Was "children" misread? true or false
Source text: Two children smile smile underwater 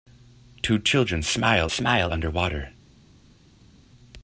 false